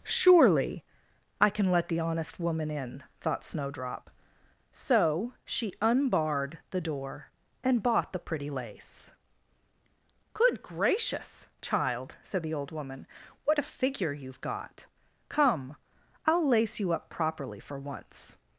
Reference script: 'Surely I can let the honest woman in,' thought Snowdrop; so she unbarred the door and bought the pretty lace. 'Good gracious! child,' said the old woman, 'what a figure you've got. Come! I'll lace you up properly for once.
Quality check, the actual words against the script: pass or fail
pass